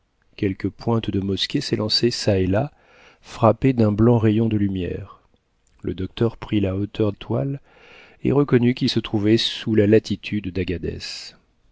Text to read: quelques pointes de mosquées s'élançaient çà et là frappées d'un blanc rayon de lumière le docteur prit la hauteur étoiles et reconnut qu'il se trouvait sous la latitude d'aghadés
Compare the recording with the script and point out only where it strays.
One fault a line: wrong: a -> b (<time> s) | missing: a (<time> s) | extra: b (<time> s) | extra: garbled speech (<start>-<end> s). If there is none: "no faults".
no faults